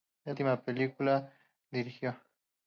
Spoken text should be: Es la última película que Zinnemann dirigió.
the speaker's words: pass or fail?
fail